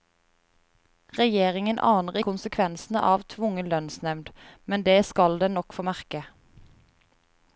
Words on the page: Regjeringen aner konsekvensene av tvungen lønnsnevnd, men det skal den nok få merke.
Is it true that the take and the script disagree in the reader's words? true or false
false